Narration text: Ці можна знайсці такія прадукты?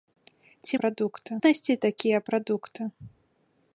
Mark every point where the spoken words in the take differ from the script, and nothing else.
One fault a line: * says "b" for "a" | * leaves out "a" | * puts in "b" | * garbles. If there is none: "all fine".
* says "прадукты" for "можна"